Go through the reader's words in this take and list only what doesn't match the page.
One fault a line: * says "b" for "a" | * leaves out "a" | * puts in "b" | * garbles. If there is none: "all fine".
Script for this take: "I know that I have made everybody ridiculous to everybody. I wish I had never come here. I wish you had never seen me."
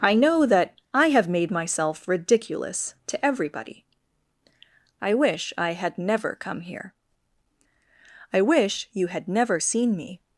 * says "myself" for "everybody"